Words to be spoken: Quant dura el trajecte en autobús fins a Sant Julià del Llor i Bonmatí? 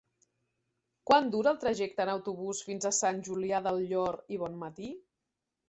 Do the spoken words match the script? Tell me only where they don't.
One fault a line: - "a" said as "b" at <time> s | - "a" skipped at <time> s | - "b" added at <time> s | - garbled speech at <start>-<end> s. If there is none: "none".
none